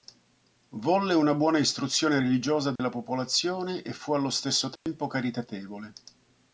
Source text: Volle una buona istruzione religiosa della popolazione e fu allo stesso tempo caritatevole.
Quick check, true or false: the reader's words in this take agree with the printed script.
true